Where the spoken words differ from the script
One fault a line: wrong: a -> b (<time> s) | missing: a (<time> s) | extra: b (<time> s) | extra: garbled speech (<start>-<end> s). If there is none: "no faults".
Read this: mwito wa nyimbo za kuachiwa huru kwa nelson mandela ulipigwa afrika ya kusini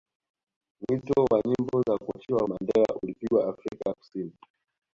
missing: huru kwa nelson (2.4 s)